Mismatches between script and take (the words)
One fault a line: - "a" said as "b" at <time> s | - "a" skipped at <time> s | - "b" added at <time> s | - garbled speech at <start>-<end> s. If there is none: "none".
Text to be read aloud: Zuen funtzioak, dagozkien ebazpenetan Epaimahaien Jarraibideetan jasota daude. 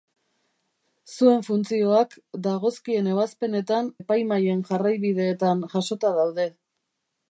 none